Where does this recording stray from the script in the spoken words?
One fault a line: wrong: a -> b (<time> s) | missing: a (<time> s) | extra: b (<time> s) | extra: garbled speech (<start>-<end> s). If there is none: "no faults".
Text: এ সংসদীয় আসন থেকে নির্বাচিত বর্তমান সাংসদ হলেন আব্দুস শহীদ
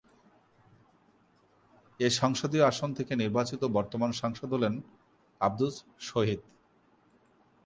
no faults